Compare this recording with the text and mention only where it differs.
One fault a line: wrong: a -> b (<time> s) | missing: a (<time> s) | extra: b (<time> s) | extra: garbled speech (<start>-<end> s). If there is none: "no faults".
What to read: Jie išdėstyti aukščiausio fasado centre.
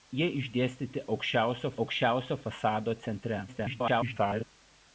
extra: aukščiausio (1.8 s)
extra: garbled speech (3.5-4.4 s)